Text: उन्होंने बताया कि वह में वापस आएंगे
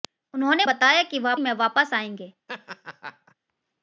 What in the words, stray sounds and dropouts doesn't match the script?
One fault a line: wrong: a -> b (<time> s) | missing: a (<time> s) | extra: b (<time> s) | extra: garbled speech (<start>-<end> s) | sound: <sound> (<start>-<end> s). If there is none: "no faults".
sound: laugh (2.5-3.4 s)